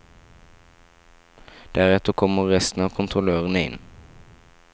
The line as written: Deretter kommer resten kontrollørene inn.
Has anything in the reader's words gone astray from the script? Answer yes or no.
yes